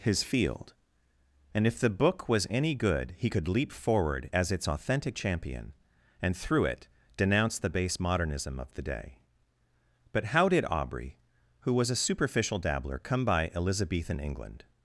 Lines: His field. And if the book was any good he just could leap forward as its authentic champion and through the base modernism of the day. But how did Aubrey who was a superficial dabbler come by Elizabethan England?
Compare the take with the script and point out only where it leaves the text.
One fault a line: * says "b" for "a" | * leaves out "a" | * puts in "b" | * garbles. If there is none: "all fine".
* leaves out "just"
* puts in "it denounce"